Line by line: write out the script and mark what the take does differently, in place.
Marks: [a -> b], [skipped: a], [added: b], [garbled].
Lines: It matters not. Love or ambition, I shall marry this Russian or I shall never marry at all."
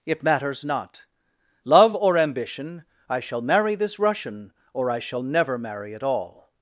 It matters not. Love or ambition, I shall marry this Russian or I shall never marry at all."